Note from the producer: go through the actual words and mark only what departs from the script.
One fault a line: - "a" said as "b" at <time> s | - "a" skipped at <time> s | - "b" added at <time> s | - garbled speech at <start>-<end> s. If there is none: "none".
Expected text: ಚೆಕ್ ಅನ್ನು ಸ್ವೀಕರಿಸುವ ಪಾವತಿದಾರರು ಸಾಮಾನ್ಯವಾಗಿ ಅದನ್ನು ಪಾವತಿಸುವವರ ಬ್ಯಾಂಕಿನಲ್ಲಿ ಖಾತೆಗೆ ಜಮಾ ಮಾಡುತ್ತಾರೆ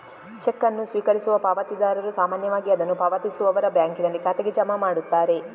none